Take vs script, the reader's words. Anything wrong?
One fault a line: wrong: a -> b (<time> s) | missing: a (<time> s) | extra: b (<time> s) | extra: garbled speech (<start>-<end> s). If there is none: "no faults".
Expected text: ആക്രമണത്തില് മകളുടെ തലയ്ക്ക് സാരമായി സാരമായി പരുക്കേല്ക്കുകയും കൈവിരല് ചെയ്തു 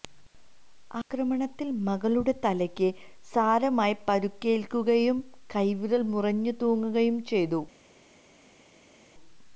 missing: സാരമായി (4.0 s)
extra: മുറിഞ്ഞു തൂങ്ങുകയും (6.1 s)